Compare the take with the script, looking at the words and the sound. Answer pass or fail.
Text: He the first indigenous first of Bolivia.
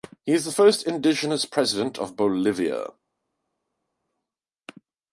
fail